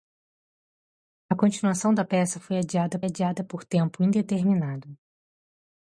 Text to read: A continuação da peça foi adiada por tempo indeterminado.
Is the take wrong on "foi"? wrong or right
right